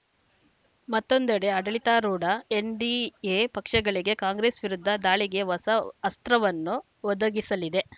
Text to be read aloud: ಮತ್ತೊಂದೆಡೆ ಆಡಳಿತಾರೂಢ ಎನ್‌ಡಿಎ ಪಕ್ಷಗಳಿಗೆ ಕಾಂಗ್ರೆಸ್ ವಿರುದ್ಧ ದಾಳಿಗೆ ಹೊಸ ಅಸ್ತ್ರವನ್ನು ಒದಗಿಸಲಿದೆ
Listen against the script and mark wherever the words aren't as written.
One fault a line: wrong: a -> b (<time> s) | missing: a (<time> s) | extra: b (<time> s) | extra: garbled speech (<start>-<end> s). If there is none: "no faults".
no faults